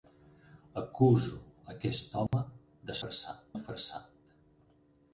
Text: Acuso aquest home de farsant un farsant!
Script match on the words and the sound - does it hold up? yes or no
no